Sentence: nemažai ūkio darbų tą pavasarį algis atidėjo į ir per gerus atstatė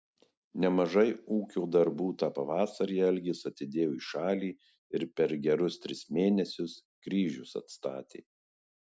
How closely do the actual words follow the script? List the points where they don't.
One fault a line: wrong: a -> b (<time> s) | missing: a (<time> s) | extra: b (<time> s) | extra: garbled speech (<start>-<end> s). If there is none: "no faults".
extra: šalį (4.1 s)
extra: tris mėnesius kryžius (5.9 s)